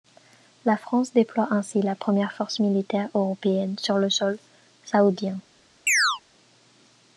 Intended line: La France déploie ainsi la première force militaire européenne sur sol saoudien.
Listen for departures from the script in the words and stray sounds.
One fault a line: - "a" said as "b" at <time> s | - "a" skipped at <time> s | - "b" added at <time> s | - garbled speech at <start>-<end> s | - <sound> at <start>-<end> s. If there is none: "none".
- "le" added at 4.0 s
- chirp at 5.9-6.2 s